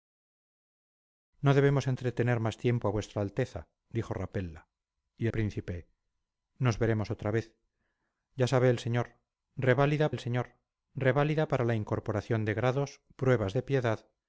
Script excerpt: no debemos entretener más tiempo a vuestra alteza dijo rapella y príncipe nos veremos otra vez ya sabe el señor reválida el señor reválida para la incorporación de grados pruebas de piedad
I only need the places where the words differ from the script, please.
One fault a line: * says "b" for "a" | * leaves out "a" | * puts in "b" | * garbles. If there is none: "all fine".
all fine